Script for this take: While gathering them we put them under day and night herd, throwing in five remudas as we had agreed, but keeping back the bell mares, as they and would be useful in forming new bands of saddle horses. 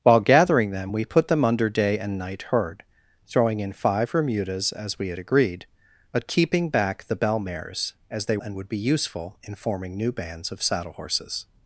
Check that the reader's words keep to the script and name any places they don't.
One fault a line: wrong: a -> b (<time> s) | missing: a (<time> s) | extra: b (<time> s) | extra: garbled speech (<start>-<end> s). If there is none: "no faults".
no faults